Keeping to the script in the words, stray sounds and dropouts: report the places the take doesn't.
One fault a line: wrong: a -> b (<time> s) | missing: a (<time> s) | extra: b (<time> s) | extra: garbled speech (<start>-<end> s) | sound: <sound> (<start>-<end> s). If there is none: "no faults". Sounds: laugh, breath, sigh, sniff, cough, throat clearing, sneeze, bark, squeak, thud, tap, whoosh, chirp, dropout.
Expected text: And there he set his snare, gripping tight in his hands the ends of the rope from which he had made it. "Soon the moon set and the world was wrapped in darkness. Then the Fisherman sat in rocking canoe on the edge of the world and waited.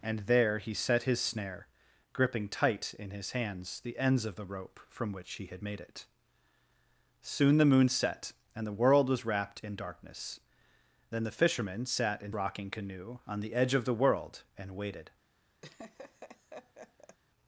sound: laugh (15.6-17.2 s)